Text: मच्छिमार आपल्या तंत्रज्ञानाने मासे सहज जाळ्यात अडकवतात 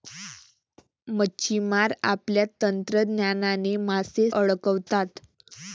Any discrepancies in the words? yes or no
yes